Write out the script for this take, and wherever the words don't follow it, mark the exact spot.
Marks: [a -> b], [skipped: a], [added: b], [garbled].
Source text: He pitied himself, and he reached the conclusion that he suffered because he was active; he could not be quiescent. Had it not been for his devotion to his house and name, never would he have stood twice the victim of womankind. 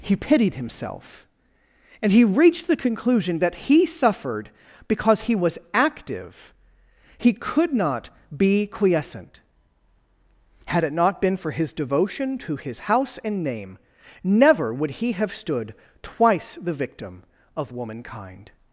He pitied himself, and he reached the conclusion that he suffered because he was active; he could not be quiescent. Had it not been for his devotion to his house and name, never would he have stood twice the victim of womankind.